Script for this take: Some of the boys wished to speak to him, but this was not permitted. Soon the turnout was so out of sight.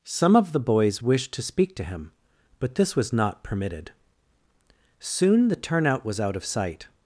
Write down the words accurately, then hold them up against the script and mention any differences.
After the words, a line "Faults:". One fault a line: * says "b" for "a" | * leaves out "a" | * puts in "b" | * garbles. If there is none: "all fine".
Some of the boys wished to speak to him, but this was not permitted. Soon the turnout was out of sight.
Faults:
* leaves out "so"